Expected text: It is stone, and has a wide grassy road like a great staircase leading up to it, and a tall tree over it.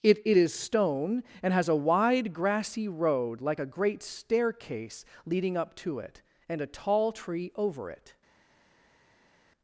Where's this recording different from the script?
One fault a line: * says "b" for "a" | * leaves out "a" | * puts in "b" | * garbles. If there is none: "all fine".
* puts in "it"